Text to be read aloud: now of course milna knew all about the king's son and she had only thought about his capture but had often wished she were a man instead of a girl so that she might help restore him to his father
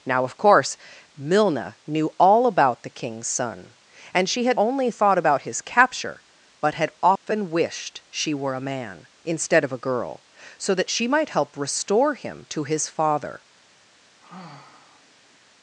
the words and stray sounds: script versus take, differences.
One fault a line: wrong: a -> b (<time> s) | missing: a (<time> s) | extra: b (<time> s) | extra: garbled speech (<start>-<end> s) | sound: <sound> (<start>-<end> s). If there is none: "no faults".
sound: dropout (7.2-7.3 s)
sound: sigh (14.2-15.4 s)